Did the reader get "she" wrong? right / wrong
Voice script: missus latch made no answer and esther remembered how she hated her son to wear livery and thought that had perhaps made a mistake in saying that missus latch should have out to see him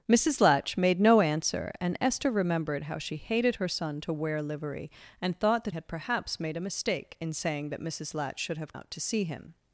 right